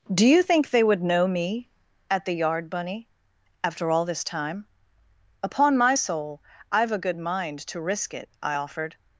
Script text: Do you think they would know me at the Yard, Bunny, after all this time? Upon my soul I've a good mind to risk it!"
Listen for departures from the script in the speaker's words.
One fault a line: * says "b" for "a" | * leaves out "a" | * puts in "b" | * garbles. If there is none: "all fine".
* puts in "I offered"